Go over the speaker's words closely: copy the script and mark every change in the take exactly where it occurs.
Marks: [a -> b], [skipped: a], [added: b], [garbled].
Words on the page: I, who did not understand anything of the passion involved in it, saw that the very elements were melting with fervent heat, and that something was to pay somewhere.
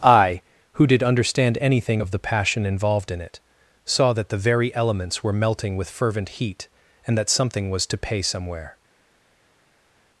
I, who did [skipped: not] understand anything of the passion involved in it, saw that the very elements were melting with fervent heat, and that something was to pay somewhere.